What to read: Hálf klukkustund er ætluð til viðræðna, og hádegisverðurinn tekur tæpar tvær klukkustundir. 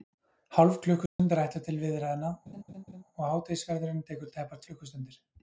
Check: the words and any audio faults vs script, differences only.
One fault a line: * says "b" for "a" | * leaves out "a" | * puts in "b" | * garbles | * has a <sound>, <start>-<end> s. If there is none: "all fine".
* has a dropout, 1.1-1.2 s
* has a laugh, 2.5-3.0 s
* leaves out "tvær"